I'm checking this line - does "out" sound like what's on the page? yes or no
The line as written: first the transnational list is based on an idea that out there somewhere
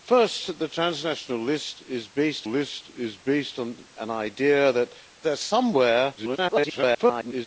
no